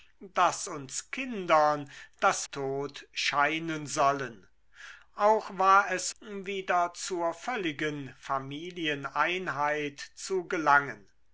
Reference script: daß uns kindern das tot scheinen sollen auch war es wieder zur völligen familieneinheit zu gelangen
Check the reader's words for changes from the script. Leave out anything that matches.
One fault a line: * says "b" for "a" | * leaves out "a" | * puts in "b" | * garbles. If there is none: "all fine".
all fine